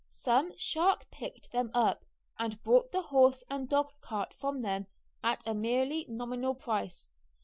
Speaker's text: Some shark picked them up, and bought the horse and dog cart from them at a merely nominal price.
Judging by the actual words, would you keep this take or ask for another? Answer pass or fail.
pass